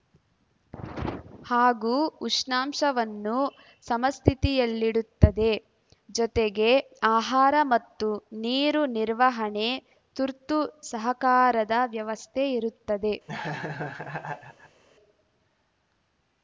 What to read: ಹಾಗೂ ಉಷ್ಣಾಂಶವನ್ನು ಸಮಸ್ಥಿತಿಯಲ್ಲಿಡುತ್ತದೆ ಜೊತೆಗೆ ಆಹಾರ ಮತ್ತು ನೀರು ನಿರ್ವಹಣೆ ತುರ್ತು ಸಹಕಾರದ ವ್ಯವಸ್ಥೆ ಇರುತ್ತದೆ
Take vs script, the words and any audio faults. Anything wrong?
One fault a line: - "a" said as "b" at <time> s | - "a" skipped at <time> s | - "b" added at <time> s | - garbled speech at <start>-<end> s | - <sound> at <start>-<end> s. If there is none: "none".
- laugh at 13.3-14.8 s